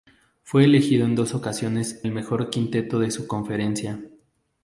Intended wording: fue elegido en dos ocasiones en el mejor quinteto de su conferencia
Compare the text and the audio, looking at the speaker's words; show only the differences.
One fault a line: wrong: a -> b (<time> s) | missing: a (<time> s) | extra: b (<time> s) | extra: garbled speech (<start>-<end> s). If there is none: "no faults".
missing: en (2.0 s)